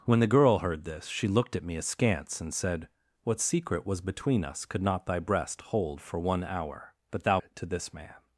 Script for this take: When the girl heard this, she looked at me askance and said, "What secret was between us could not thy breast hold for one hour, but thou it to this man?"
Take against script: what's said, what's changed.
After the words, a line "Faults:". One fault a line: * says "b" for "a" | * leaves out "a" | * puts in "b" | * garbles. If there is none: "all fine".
When the girl heard this, she looked at me askance and said, "What secret was between us could not thy breast hold for one hour, but thou it to this man?"
Faults:
all fine